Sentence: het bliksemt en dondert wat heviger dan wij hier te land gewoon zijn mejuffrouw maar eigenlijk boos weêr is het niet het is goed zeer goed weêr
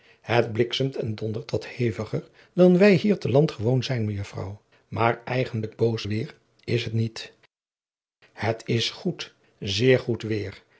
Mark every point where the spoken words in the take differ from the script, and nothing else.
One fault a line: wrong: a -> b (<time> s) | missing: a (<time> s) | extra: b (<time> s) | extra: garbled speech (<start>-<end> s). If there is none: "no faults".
no faults